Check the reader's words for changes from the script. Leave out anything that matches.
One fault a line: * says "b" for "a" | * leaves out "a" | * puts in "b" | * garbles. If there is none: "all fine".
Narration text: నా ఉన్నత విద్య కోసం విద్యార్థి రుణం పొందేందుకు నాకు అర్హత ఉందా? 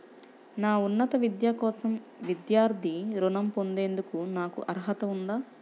all fine